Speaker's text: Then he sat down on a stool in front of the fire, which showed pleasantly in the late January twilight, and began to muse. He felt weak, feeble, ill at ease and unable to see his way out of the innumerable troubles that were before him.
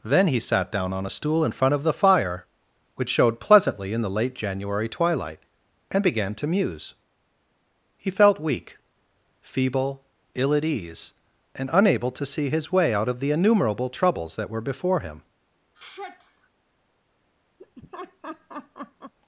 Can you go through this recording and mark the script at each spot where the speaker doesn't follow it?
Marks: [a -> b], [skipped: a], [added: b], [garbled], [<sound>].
Then he sat down on a stool in front of the fire, which showed pleasantly in the late January twilight, and began to muse. He felt weak, feeble, ill at ease and unable to see his way out of the innumerable troubles that were before him. [sigh] [laugh]